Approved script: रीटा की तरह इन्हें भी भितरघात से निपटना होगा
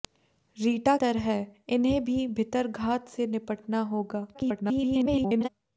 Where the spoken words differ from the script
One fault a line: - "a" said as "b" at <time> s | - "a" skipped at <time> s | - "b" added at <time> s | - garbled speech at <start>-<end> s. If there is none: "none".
- "की" skipped at 0.9 s
- garbled speech at 4.3-5.5 s